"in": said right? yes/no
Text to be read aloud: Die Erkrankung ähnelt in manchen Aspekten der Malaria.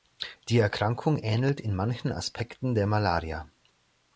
yes